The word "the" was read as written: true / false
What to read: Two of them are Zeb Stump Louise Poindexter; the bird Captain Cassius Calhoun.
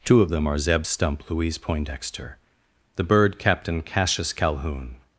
true